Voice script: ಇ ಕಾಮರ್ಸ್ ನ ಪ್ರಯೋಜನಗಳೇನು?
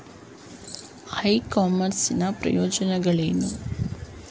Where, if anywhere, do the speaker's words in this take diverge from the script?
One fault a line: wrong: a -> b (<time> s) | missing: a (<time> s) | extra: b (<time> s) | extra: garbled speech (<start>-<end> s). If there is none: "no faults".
no faults